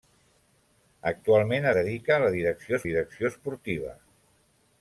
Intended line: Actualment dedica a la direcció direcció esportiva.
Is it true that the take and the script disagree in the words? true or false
false